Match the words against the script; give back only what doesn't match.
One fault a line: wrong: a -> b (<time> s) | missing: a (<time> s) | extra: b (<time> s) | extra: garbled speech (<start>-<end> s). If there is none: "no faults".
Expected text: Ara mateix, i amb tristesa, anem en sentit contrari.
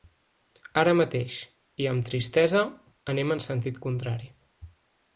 no faults